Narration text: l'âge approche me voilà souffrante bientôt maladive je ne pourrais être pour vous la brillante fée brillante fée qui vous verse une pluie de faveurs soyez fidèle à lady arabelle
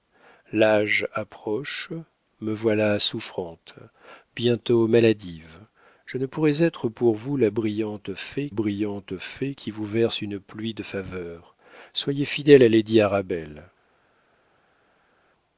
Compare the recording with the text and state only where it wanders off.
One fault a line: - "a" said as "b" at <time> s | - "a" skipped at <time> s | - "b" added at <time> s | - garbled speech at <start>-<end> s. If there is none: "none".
none